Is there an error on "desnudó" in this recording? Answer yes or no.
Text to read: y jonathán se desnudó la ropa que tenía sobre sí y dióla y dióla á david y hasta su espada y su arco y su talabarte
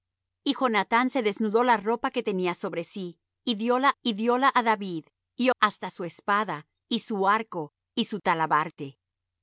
no